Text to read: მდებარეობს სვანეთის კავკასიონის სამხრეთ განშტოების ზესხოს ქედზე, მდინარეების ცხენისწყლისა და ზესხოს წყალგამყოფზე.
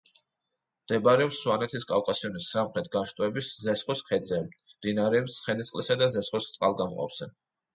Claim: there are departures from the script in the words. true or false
false